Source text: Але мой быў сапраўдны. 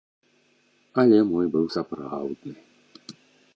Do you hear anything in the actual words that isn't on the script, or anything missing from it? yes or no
no